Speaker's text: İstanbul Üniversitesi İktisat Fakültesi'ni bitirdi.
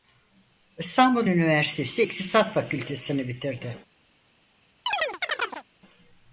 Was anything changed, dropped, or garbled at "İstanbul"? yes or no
no